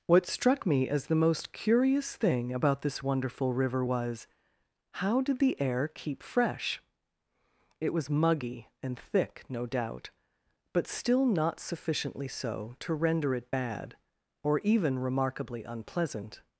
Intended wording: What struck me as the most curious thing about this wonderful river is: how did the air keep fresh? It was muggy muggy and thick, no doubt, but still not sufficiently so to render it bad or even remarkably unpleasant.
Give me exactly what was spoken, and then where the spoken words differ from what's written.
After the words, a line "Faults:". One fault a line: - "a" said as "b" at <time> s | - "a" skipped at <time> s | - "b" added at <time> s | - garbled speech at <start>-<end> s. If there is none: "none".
What struck me as the most curious thing about this wonderful river was: how did the air keep fresh? It was muggy and thick, no doubt, but still not sufficiently so to render it bad or even remarkably unpleasant.
Faults:
- "is" said as "was" at 3.8 s
- "muggy" skipped at 8.7 s